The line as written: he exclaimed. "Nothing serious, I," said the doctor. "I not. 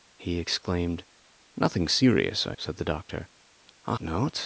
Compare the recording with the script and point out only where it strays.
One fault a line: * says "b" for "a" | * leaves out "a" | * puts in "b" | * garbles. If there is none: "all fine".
all fine